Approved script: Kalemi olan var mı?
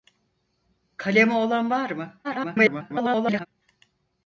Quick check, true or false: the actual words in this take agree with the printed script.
false